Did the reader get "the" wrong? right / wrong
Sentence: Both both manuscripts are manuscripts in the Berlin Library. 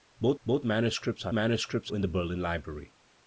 right